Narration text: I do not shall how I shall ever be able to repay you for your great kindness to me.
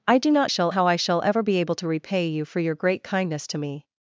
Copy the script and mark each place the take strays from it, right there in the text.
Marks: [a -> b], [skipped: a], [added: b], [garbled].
I do not shall how I shall ever be able to repay you for your great kindness to me.